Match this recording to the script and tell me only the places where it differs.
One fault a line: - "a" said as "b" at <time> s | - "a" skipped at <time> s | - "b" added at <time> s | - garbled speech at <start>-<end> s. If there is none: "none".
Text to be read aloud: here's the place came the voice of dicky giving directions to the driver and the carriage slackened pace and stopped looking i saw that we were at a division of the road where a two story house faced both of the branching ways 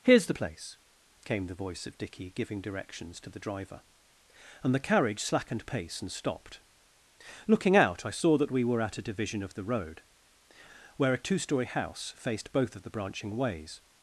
- "out" added at 7.7 s